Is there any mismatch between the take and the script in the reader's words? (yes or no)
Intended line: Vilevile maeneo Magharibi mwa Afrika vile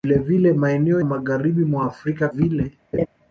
no